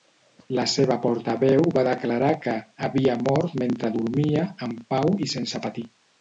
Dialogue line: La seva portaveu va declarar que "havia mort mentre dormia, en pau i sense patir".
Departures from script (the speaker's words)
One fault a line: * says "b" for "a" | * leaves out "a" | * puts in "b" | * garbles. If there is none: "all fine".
all fine